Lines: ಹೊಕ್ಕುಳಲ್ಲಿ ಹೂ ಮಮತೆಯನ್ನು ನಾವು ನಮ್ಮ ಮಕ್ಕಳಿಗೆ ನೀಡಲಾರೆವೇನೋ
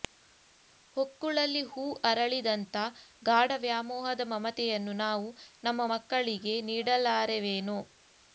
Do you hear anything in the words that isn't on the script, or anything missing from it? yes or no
yes